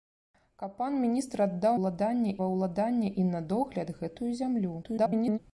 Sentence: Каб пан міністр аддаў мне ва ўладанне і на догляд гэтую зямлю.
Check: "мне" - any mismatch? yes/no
yes